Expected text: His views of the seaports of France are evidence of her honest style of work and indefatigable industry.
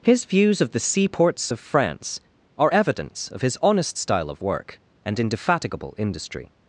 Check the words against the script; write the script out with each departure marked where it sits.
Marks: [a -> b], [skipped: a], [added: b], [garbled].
His views of the seaports of France are evidence of [her -> his] honest style of work and indefatigable industry.